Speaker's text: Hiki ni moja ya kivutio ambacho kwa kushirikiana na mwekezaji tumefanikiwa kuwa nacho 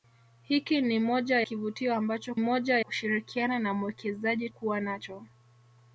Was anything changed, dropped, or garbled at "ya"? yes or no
yes